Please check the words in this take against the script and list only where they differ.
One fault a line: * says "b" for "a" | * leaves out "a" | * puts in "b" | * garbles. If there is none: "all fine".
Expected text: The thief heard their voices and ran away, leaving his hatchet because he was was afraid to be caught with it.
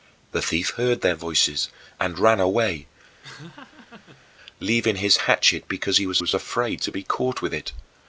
all fine